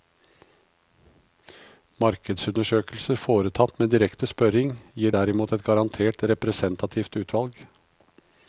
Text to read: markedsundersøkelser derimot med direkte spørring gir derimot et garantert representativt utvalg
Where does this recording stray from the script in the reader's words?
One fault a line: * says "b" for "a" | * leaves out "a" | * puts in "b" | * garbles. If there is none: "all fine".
* says "foretatt" for "derimot"